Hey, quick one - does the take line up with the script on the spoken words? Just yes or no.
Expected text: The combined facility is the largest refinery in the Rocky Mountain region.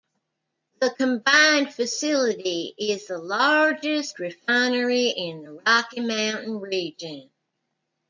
yes